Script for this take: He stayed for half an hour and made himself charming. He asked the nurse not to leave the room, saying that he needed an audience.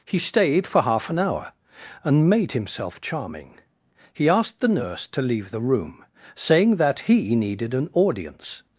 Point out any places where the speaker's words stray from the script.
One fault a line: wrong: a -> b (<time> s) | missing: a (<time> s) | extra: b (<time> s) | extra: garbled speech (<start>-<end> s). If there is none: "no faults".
missing: not (5.1 s)